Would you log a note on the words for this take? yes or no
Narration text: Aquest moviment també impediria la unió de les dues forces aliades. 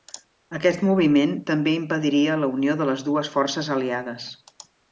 no